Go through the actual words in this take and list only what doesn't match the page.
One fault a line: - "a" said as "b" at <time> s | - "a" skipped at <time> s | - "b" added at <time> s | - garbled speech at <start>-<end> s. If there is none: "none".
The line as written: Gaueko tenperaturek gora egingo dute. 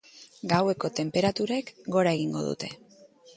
none